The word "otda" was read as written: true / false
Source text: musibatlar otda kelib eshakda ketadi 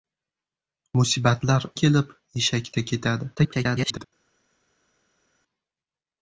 false